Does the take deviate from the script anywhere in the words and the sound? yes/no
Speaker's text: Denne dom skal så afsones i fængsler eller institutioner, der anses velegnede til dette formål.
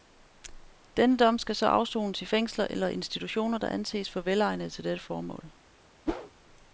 yes